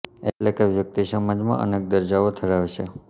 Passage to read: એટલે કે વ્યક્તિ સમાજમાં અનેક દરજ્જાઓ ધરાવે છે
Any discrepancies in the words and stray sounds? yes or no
no